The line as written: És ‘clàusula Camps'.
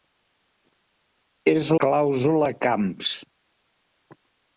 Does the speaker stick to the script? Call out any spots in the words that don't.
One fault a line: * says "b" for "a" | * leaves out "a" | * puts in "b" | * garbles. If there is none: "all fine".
all fine